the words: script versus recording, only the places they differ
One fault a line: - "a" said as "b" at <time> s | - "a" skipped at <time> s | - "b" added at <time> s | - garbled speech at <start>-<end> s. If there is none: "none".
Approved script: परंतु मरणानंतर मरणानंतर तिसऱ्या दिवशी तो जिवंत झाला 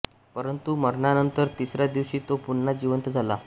- "मरणानंतर" skipped at 1.5 s
- "पुन्हा" added at 2.5 s